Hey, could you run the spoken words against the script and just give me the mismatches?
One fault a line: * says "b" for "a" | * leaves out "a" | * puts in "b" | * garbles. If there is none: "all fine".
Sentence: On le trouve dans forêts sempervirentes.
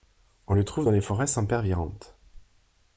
* puts in "les"